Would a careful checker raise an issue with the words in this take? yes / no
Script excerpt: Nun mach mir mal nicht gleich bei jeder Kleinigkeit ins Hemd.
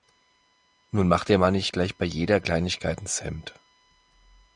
yes